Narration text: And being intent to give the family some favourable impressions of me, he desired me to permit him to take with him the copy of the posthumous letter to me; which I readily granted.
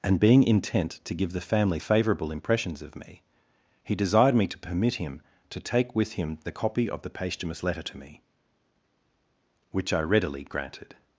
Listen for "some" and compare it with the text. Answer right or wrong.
wrong